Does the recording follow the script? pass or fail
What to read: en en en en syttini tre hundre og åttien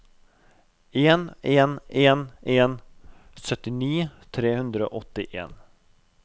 pass